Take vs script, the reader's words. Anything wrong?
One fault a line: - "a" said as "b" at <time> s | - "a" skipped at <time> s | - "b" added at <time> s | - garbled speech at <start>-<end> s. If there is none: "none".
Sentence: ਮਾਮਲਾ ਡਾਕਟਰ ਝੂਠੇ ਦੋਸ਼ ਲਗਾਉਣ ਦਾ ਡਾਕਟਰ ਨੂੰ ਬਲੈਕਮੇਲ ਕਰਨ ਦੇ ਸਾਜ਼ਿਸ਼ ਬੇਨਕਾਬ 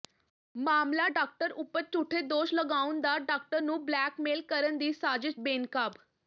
- "ਉੱਪਰ" added at 1.5 s
- "ਦੇ" said as "ਦੀ" at 4.8 s